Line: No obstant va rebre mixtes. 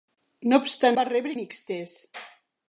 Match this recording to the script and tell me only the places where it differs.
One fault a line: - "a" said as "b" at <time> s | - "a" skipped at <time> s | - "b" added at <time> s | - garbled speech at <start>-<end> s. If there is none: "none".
none